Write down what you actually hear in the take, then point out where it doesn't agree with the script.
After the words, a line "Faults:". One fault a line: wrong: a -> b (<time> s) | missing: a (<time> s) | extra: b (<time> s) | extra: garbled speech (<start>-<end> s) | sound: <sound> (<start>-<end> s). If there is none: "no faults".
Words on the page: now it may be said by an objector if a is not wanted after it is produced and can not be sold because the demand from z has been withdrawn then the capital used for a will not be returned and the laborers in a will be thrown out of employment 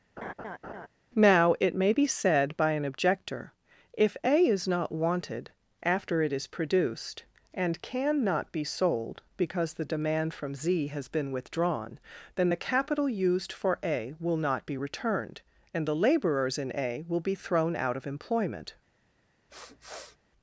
now it may be said by an objector if a is not wanted after it is produced and can not be sold because the demand from z has been withdrawn then the capital used for a will not be returned and the laborers in a will be thrown out of employment
Faults:
sound: laugh (0.2-0.9 s)
sound: sniff (19.5-20.2 s)